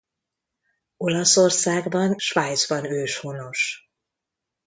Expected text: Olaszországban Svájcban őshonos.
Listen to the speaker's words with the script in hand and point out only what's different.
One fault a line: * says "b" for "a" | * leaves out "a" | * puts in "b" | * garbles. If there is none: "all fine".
all fine